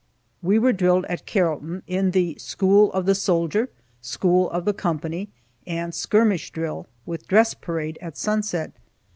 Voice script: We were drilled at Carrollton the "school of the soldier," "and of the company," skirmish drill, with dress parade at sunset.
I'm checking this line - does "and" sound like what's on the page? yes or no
no